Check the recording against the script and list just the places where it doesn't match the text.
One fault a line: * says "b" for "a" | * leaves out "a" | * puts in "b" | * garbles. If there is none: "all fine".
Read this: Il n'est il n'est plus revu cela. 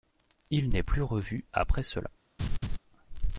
* leaves out "il n'est"
* puts in "après"